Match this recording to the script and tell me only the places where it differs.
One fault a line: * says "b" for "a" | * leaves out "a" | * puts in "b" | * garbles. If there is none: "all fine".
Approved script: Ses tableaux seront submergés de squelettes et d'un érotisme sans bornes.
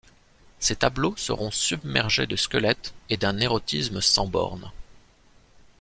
all fine